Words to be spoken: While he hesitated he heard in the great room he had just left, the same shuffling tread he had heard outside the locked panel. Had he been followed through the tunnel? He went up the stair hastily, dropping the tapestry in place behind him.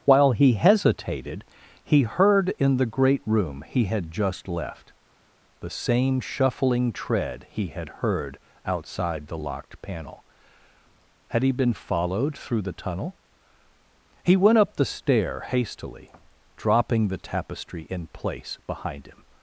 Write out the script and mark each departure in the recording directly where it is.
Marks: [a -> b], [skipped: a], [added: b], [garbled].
While he hesitated he heard in the great room he had just left, the same shuffling tread he had heard outside the locked panel. Had he been followed through the tunnel? He went up the stair hastily, dropping the tapestry in place behind him.